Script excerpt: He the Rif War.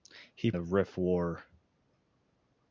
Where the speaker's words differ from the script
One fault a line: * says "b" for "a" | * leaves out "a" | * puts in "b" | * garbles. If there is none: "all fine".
all fine